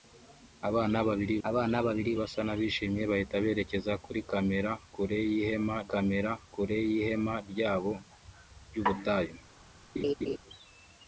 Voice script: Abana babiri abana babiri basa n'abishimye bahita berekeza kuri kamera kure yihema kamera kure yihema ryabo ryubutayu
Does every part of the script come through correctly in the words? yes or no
yes